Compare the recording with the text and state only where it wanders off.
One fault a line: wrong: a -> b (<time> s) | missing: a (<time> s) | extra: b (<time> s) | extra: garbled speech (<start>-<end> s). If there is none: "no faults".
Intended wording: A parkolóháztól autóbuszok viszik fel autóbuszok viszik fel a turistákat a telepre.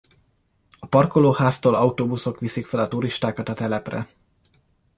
missing: autóbuszok viszik fel (2.8 s)